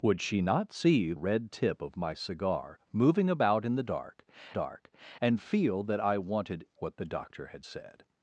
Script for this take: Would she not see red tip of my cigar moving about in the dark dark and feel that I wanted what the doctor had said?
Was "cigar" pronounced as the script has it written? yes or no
yes